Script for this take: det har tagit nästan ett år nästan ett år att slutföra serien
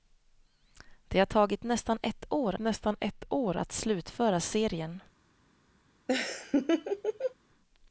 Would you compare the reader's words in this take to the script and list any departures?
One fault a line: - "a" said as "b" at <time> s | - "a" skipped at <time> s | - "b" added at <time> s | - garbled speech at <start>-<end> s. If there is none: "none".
none